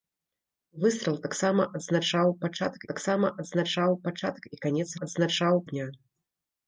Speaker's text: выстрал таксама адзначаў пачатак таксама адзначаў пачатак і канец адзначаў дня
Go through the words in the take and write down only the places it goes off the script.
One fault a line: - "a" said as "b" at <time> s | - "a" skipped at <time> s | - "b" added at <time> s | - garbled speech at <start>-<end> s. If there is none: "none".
none